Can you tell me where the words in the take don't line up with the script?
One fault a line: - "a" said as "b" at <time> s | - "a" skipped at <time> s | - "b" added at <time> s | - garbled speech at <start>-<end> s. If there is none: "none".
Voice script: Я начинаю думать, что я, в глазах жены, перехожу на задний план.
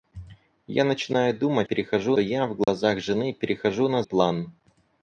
- "что" said as "перехожу" at 1.6 s
- "задний" skipped at 4.0 s